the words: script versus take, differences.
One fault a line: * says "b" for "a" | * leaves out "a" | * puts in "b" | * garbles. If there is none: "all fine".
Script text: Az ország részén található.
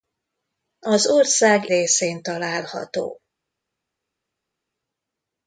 all fine